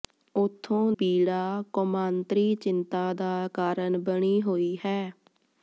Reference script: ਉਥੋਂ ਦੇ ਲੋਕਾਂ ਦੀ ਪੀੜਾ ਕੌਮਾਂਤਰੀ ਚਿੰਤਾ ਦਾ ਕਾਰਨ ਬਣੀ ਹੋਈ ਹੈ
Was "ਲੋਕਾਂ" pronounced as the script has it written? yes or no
no